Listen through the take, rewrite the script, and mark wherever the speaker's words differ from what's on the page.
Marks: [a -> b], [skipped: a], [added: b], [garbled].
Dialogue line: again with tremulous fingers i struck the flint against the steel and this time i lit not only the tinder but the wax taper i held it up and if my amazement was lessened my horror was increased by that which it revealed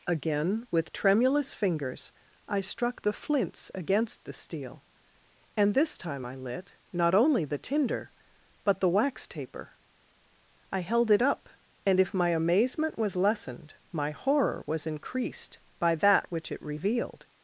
again with tremulous fingers i struck the [flint -> flints] against the steel and this time i lit not only the tinder but the wax taper i held it up and if my amazement was lessened my horror was increased by that which it revealed